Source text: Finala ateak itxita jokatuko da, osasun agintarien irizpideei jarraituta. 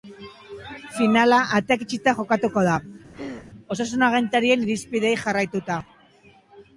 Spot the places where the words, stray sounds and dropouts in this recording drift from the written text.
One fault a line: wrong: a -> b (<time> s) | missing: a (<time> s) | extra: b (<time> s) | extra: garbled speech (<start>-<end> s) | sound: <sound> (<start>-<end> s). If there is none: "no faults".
sound: throat clearing (3.1-3.5 s)